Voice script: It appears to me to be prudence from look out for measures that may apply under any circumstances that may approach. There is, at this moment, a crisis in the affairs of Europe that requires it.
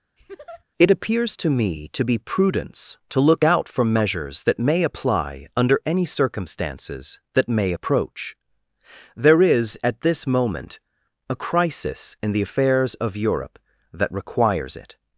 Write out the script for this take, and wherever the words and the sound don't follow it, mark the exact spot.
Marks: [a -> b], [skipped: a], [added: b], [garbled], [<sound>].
[laugh] It appears to me to be prudence [from -> to] look out for measures that may apply under any circumstances that may approach. There is, at this moment, a crisis in the affairs of Europe that requires it.